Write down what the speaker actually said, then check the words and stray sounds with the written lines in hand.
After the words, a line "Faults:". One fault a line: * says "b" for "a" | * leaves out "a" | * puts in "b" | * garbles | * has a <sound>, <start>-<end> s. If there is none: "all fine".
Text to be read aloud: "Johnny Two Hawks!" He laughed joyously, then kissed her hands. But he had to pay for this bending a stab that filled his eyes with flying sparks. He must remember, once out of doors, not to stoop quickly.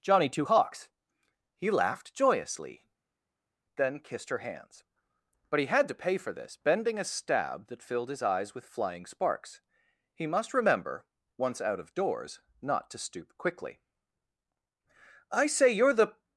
"Johnny Two Hawks!" He laughed joyously, then kissed her hands. But he had to pay for this bending a stab that filled his eyes with flying sparks. He must remember, once out of doors, not to stoop quickly. "I say, you're the
Faults:
* puts in "I say you're the"